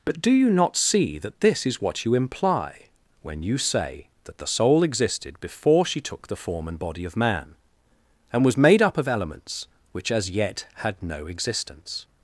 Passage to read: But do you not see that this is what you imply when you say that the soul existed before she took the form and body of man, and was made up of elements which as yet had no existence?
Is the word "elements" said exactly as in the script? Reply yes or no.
yes